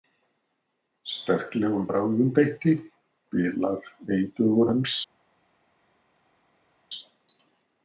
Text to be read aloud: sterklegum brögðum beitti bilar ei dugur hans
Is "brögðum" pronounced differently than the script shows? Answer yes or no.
no